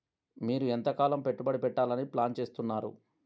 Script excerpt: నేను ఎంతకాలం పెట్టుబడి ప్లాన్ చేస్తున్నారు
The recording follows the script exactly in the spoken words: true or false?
false